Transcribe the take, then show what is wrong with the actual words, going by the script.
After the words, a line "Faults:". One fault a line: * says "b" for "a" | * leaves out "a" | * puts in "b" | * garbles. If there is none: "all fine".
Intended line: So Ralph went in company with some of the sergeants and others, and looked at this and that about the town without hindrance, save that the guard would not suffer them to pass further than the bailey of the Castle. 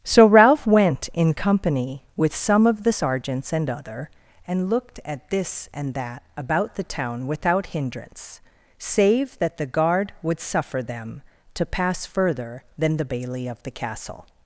So Ralph went in company with some of the sergeants and other, and looked at this and that about the town without hindrance, save that the guard would suffer them to pass further than the bailey of the Castle.
Faults:
* says "other" for "others"
* leaves out "not"